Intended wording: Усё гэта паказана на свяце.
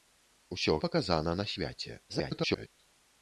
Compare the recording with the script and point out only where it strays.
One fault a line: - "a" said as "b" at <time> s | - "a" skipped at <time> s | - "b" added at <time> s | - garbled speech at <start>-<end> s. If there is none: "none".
- "гэта" skipped at 0.7 s
- garbled speech at 2.1-2.7 s